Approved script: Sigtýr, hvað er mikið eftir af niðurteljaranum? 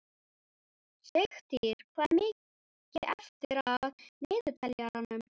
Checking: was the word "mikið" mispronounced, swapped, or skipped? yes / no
no